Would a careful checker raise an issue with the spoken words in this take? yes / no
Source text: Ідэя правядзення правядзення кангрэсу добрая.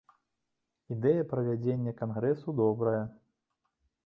yes